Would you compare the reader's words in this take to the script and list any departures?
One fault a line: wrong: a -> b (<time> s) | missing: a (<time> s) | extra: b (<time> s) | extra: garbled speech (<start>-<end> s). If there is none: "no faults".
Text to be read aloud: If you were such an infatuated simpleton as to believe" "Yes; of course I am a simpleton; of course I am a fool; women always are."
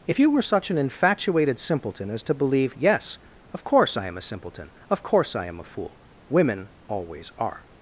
no faults